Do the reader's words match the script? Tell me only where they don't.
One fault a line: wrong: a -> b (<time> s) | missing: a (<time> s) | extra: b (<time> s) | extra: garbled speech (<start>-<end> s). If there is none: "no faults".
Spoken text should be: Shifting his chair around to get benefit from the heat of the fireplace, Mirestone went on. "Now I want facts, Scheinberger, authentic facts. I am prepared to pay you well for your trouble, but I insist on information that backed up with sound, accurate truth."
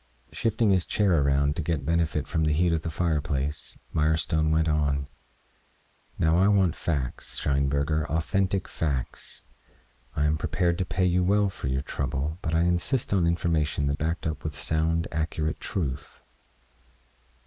no faults